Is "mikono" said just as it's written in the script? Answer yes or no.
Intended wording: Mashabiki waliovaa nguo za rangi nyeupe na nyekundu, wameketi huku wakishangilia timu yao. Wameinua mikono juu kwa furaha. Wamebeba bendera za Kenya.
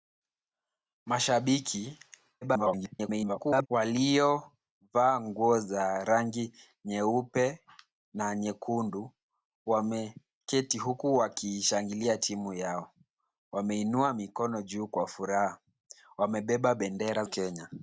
yes